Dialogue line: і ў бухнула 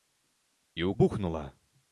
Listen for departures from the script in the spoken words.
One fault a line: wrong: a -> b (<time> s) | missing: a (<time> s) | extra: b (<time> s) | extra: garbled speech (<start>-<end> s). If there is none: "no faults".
no faults